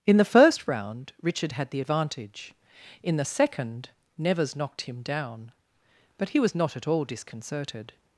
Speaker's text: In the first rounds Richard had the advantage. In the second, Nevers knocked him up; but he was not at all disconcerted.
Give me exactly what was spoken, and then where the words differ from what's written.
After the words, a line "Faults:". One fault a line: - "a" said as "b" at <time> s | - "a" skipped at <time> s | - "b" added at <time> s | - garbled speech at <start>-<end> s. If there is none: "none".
In the first round Richard had the advantage. In the second, Nevers knocked him down; but he was not at all disconcerted.
Faults:
- "rounds" said as "round" at 0.7 s
- "up" said as "down" at 5.0 s